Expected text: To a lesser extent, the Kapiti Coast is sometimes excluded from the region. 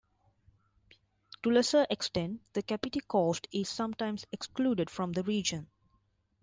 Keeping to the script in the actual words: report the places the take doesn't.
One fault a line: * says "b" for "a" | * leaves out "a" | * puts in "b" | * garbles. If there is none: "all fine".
all fine